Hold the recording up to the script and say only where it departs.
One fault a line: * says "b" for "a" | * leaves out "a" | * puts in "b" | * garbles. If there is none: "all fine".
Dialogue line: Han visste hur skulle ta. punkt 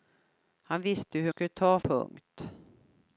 all fine